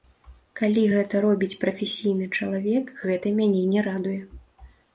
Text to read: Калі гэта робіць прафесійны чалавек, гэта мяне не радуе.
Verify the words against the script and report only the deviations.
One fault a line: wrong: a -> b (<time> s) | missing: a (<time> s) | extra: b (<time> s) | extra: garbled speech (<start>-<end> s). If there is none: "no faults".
no faults